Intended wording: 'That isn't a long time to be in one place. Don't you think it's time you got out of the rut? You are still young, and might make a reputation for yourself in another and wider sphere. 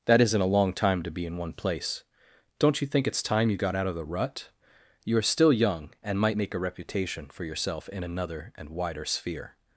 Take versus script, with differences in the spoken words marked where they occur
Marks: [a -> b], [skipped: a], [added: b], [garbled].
'That isn't a long time to be in one place. Don't you think it's time you got out of the rut? You are still young, and might make a reputation for yourself in another and wider sphere.